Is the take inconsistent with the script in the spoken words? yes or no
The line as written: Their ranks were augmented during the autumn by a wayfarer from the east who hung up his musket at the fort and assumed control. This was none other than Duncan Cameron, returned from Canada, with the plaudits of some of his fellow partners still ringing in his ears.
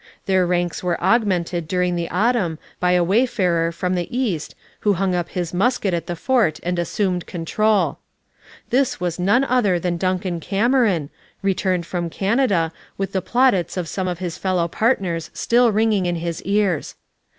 no